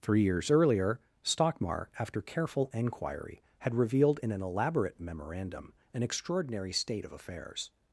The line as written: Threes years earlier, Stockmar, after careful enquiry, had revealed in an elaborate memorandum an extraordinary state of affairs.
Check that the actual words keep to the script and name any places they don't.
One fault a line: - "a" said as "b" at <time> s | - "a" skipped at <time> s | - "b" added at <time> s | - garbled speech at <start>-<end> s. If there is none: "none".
- "Threes" said as "Three" at 0.0 s